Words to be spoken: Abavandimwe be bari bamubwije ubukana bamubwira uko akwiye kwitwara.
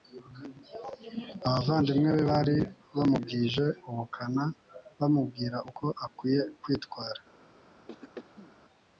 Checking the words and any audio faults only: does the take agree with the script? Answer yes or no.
no